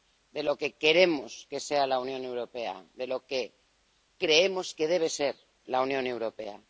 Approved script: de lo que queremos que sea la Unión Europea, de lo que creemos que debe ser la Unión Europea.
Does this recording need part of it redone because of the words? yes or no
no